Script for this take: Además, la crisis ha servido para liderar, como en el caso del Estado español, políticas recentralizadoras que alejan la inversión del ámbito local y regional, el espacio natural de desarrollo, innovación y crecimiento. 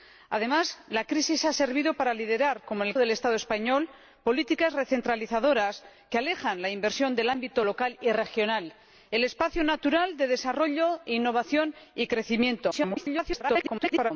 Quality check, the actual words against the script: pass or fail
fail